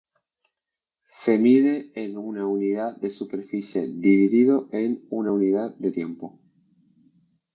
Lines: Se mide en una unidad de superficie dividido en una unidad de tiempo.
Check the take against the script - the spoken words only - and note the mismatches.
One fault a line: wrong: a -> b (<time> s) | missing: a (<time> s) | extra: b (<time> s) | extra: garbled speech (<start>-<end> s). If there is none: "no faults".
no faults